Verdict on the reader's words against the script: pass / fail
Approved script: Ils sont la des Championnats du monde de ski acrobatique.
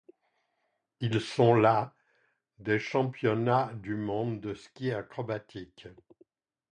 pass